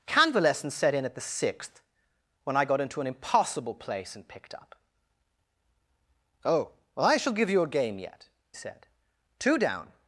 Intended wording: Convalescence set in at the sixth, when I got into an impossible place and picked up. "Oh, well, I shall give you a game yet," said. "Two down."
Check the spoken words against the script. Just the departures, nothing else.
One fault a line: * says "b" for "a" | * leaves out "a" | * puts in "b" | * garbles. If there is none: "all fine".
all fine